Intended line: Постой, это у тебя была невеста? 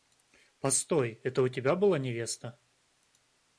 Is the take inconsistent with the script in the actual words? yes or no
no